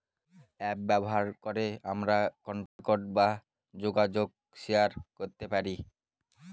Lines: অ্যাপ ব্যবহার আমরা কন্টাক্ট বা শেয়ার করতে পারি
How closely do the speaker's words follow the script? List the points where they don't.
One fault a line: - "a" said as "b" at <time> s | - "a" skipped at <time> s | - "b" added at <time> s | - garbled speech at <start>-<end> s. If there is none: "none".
- "করে" added at 1.4 s
- "যোগাযোগ" added at 3.7 s